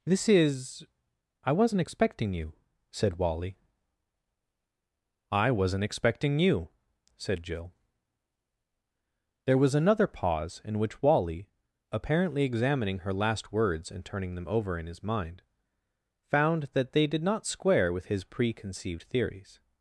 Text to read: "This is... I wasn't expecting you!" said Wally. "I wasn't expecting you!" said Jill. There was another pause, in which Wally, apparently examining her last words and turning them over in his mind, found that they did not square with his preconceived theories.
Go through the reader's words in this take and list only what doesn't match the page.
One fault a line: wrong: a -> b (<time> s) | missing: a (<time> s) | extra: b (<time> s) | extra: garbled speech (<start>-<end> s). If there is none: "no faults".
no faults